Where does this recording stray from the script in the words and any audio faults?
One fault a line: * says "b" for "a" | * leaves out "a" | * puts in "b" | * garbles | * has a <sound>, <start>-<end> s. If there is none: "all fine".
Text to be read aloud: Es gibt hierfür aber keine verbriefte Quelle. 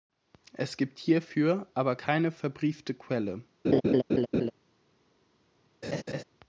* has a laugh, 3.6-4.5 s
* has a laugh, 5.8-6.2 s